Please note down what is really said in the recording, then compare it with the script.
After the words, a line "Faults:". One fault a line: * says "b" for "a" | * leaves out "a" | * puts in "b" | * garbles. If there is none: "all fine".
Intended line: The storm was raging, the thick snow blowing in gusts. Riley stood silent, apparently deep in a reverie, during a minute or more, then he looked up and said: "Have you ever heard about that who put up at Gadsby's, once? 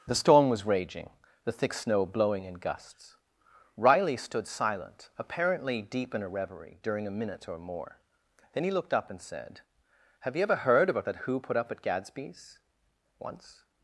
The storm was raging, the thick snow blowing in gusts. Riley stood silent, apparently deep in a reverie, during a minute or more, then he looked up and said: "Have you ever heard about that who put up at Gadsby's, once?
Faults:
all fine